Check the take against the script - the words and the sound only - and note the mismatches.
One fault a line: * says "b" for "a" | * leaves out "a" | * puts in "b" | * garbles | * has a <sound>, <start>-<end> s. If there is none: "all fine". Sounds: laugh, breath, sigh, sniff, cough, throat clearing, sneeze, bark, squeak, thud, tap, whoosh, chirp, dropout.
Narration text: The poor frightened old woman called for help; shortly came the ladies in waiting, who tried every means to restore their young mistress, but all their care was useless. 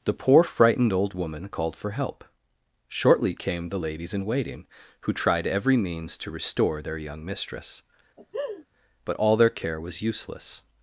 * has a laugh, 8.2-8.7 s